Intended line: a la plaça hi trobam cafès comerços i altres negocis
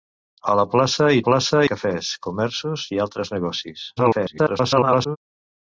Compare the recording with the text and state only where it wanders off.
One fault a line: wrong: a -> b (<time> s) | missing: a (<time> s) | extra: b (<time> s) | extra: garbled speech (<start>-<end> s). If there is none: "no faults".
wrong: trobam -> plaça (1.2 s)
extra: garbled speech (4.0-5.2 s)